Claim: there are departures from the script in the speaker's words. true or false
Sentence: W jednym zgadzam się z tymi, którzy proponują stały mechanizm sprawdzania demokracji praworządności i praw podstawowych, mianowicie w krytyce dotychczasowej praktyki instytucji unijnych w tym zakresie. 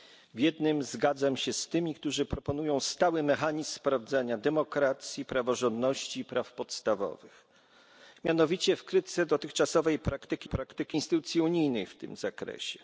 true